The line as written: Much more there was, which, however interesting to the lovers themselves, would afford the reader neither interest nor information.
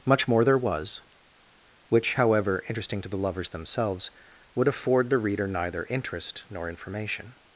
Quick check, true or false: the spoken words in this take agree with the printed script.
true